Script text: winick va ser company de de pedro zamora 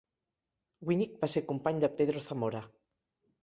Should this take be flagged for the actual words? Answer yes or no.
no